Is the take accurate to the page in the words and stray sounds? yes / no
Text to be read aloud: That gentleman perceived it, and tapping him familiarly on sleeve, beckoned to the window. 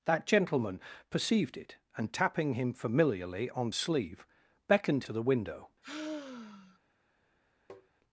no